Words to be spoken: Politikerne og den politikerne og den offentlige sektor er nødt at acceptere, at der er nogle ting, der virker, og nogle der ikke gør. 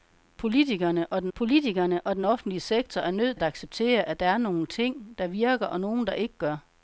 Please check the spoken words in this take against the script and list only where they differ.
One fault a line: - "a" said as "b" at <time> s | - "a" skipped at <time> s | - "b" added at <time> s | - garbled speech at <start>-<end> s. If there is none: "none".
none